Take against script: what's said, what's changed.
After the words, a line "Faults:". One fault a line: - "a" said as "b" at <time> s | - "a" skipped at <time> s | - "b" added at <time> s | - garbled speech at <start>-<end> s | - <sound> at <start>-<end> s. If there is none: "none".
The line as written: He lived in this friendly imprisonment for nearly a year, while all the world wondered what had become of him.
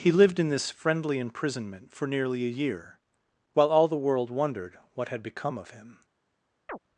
He lived in this friendly imprisonment for nearly a year, while all the world wondered what had become of him.
Faults:
- chirp at 6.7-6.8 s